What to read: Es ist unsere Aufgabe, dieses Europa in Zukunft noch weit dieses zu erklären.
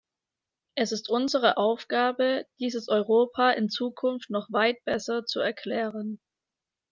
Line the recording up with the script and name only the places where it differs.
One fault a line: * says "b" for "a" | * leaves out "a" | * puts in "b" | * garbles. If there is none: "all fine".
* says "besser" for "dieses"